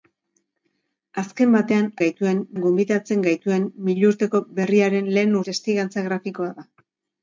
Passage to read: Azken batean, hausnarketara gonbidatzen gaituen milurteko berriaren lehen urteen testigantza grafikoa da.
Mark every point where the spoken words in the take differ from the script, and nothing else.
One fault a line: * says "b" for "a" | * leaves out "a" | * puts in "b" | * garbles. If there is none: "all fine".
* says "gaituen" for "hausnarketara"
* leaves out "urteen"